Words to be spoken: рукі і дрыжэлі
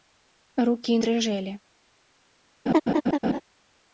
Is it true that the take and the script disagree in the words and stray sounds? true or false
true